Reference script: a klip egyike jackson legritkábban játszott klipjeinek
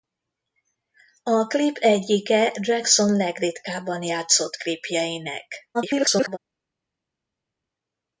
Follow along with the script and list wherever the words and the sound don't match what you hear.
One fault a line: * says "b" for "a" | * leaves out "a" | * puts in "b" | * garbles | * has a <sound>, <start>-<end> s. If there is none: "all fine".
* garbles